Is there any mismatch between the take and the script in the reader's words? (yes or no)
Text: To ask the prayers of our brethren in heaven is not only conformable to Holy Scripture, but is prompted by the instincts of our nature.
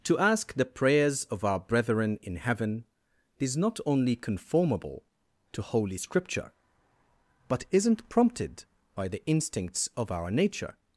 yes